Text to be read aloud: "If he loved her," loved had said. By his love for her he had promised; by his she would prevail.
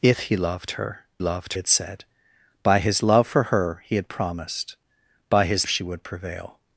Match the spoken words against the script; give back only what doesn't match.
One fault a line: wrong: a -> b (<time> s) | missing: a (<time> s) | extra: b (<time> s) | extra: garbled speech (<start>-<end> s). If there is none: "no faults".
no faults